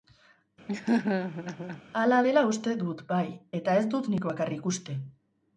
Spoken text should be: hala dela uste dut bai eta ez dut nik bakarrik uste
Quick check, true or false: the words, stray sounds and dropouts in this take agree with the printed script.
false